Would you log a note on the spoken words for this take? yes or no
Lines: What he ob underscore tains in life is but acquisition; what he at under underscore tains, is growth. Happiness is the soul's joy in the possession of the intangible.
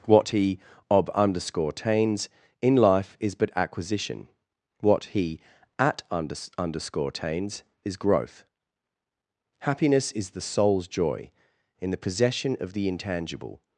no